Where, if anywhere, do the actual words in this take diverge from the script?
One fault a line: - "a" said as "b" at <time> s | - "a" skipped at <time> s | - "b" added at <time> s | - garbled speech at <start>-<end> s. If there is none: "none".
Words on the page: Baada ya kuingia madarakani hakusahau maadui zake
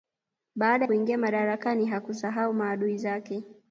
- "ya" skipped at 0.9 s